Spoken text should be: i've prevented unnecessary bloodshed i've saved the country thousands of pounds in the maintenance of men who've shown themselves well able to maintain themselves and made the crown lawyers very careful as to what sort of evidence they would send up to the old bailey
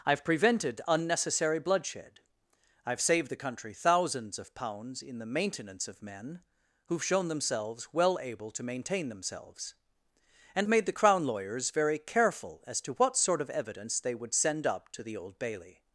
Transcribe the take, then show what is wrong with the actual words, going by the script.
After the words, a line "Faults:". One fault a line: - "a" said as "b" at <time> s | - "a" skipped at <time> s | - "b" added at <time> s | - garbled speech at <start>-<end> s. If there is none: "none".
i've prevented unnecessary bloodshed i've saved the country thousands of pounds in the maintenance of men who've shown themselves well able to maintain themselves and made the crown lawyers very careful as to what sort of evidence they would send up to the old bailey
Faults:
none